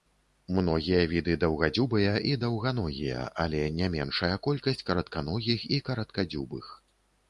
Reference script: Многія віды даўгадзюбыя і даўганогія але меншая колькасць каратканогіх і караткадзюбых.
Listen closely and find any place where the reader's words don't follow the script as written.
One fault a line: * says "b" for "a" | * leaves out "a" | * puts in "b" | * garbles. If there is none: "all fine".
* puts in "не"